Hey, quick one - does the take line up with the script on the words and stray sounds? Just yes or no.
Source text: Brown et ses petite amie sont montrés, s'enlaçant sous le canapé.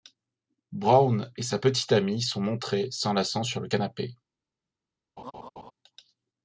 no